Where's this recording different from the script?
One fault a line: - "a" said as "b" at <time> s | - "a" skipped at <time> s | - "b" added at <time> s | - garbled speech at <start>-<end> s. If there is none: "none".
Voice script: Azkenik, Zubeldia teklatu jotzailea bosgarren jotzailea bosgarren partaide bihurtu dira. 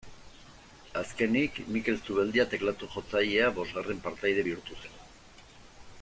- "Mikel" added at 1.8 s
- "jotzailea bosgarren" skipped at 4.0 s
- "dira" said as "zen" at 4.8 s